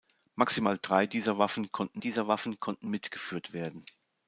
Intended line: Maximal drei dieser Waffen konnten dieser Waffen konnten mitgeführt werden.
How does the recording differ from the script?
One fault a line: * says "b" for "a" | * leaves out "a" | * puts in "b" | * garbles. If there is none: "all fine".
all fine